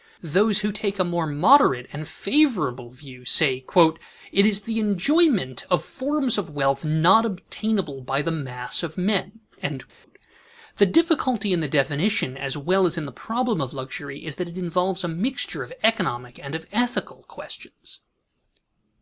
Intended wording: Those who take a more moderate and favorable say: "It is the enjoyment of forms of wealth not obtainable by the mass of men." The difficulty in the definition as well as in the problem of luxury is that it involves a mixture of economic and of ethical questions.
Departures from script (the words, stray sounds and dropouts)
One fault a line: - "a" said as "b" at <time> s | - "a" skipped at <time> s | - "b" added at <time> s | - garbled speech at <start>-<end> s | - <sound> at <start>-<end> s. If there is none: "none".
- "view" added at 2.9 s
- dropout at 9.9-10.0 s